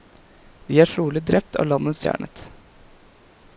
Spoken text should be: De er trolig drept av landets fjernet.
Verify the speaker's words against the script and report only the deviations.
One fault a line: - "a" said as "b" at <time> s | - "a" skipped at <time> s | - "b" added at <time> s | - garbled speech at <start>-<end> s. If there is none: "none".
none